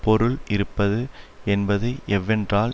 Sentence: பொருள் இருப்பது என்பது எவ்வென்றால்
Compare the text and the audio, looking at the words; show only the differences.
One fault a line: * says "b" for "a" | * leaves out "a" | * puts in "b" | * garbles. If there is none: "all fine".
all fine